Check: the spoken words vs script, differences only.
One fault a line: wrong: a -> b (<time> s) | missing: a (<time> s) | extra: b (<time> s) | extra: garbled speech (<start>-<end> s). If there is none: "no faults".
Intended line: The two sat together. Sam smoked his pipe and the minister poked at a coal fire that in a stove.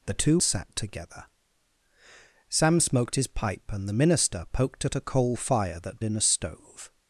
no faults